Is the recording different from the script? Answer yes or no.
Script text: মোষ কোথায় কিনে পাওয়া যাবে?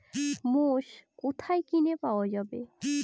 no